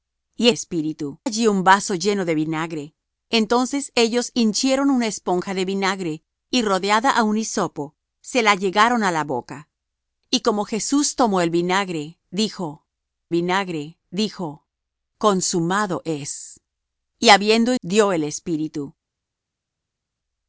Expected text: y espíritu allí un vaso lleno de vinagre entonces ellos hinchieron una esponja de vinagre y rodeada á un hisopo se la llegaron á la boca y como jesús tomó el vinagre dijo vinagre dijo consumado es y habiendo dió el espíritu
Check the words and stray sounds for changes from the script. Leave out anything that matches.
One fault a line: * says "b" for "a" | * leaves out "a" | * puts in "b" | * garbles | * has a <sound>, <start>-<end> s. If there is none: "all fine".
all fine